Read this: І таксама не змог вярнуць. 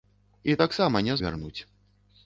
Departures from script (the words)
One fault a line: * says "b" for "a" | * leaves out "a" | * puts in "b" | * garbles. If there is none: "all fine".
* leaves out "змог"